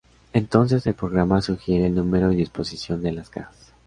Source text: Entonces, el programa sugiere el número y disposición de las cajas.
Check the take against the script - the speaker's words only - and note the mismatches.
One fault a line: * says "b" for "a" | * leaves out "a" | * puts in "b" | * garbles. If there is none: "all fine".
all fine